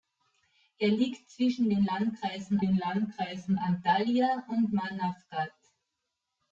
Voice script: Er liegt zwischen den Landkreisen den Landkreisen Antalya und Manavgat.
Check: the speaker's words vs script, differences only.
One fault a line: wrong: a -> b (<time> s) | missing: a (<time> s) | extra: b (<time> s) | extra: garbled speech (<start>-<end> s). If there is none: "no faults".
no faults